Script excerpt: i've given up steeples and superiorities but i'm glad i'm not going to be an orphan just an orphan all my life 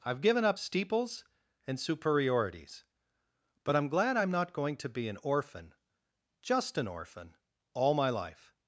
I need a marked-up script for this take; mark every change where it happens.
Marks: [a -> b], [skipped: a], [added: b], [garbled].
i've given up steeples and superiorities but i'm glad i'm not going to be an orphan just an orphan all my life